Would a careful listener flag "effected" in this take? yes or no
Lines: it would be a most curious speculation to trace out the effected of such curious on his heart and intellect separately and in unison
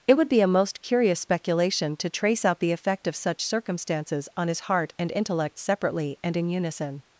yes